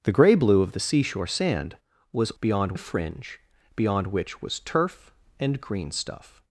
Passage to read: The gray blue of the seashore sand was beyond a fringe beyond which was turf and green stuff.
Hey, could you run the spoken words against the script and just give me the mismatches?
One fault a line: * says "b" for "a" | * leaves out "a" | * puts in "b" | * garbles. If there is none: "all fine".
all fine